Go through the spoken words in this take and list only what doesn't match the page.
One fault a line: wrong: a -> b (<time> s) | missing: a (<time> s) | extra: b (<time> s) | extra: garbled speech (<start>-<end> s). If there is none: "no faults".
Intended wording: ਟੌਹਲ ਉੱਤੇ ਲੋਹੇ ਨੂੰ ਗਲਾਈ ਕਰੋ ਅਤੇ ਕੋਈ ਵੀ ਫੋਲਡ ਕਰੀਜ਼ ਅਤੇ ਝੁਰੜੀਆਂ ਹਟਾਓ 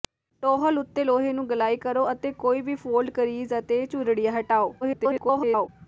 extra: garbled speech (4.8-5.7 s)